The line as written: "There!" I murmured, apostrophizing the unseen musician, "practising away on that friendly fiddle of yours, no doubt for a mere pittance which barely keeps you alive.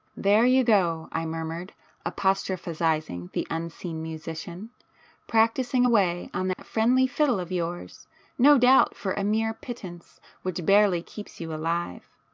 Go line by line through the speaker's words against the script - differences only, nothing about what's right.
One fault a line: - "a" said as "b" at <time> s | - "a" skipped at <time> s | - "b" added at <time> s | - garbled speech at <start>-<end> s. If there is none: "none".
- "you go" added at 0.5 s